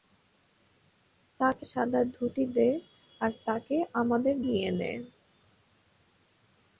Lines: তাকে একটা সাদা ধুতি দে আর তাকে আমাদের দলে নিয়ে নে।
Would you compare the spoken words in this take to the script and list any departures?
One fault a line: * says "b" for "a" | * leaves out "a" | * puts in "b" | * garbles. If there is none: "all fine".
* leaves out "একটা"
* leaves out "দলে"